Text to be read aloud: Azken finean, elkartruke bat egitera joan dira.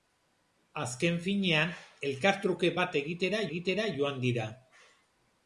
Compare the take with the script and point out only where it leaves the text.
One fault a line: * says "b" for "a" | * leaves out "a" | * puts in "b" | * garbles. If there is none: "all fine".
* puts in "egitera"